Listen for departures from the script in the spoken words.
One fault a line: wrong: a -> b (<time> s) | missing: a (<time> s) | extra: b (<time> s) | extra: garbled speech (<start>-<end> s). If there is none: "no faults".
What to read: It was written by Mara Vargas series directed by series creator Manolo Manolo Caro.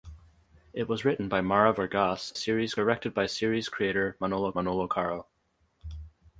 no faults